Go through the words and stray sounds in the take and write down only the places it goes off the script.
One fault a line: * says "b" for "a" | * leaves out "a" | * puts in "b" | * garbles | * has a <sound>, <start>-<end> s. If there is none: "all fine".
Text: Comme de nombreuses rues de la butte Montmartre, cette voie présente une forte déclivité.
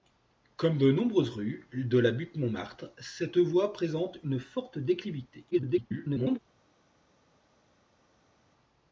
* garbles